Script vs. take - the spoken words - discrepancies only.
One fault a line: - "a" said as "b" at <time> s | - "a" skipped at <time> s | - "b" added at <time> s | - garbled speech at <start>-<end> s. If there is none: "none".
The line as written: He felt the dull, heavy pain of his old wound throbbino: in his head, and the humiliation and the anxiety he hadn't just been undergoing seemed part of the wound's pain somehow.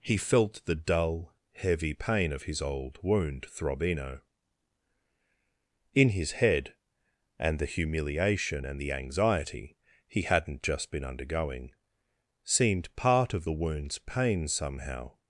none